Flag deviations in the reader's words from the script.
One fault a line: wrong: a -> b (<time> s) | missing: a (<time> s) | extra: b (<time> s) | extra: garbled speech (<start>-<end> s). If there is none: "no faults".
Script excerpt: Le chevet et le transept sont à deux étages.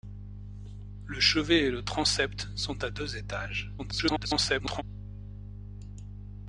extra: garbled speech (3.8-4.8 s)